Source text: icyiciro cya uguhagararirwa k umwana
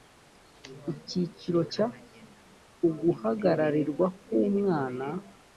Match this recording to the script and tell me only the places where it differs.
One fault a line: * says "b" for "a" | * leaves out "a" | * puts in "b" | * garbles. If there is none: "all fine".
all fine